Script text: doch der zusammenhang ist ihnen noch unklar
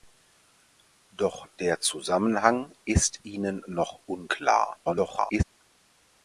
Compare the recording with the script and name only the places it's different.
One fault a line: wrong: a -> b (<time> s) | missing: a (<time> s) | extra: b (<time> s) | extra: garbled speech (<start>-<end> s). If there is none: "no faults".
extra: garbled speech (4.8-5.4 s)